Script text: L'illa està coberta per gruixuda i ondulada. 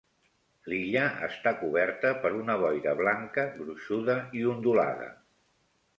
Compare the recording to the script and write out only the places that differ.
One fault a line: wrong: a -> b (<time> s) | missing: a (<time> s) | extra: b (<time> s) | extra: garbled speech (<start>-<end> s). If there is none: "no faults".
extra: una boira blanca (2.4 s)